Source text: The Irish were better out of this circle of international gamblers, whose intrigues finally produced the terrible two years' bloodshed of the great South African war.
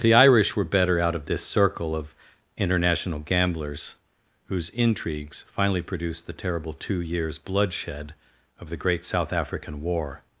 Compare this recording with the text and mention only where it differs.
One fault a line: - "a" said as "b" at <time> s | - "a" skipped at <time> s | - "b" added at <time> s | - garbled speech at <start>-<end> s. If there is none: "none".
none